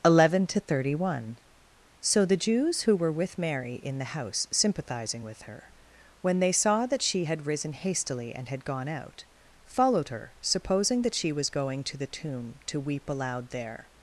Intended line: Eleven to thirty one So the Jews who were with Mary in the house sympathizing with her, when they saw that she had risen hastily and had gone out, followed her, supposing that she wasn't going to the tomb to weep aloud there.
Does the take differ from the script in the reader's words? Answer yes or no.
yes